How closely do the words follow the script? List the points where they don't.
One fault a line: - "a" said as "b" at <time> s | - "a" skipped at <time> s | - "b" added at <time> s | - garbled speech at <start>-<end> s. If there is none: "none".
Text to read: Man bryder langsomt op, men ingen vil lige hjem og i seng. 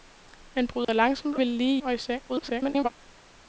- "op men ingen" skipped at 1.4 s
- "hjem" skipped at 1.8 s
- garbled speech at 2.3-2.9 s